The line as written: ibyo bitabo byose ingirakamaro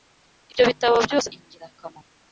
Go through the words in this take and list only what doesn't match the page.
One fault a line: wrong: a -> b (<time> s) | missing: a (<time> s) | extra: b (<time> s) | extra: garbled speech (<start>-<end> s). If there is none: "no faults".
no faults